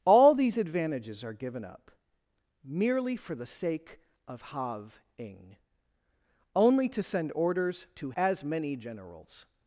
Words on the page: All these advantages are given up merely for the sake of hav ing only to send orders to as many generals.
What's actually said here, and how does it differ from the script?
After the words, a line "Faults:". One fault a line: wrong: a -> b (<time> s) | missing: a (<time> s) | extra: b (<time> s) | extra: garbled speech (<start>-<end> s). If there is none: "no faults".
All these advantages are given up merely for the sake of hav ing only to send orders to as many generals.
Faults:
no faults